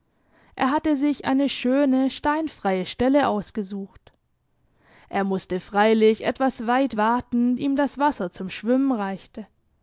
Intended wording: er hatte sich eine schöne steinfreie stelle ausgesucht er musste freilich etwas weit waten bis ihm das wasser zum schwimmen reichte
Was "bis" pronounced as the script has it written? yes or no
no